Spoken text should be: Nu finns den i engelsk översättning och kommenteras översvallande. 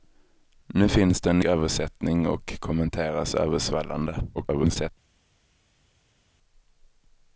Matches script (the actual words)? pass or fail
fail